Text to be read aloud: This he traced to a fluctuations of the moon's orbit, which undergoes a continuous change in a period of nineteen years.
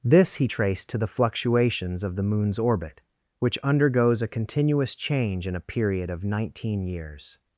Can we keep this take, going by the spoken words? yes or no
no